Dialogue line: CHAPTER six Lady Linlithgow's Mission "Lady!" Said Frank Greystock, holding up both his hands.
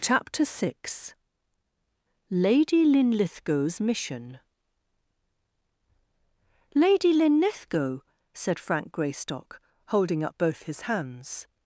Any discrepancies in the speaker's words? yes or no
yes